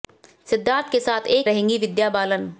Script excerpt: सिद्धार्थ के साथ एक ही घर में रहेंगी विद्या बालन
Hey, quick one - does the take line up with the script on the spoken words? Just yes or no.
no